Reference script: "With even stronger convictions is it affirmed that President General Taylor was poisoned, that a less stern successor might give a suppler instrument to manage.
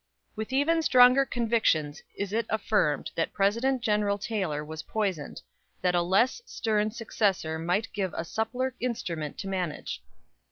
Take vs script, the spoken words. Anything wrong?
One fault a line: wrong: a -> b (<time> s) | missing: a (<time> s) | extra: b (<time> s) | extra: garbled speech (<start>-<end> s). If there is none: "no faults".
no faults